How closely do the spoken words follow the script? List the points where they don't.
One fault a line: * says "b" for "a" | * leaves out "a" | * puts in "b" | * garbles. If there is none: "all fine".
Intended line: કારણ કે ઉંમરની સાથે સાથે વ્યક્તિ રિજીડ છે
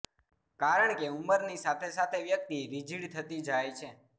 * puts in "થતી જાય"